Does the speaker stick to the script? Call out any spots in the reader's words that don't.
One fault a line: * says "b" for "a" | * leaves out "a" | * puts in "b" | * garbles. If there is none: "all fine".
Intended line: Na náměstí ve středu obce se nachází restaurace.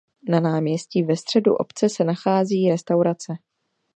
all fine